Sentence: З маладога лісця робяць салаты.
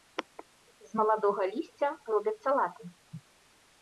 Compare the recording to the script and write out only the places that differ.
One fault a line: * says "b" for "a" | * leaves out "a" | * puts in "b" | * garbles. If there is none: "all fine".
all fine